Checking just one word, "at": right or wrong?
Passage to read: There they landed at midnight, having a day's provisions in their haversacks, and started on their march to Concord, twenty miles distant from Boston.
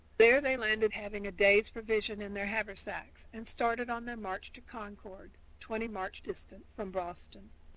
wrong